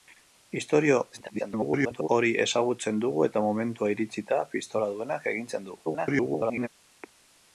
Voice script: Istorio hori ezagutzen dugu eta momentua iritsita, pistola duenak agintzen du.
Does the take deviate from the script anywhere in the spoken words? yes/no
yes